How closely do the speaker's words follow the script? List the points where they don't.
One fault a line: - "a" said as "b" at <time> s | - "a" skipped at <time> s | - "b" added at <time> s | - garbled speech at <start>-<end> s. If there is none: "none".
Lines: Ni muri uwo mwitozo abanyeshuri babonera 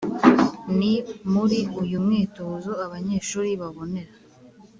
- "uwo" said as "uyu" at 1.8 s